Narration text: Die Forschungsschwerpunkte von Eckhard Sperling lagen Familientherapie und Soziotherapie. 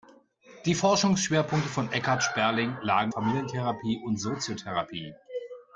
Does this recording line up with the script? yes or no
yes